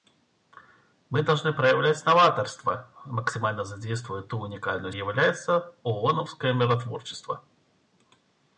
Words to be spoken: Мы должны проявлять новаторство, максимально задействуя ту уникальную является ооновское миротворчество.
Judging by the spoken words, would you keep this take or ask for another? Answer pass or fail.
pass